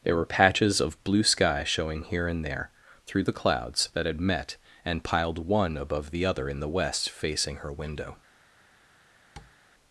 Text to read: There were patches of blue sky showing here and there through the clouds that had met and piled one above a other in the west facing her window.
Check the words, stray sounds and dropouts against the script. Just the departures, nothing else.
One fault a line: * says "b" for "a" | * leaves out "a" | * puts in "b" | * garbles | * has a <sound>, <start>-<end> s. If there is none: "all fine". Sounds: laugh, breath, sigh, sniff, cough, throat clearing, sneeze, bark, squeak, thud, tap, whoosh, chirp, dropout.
* says "the" for "a"
* has a tap, 9.4-9.5 s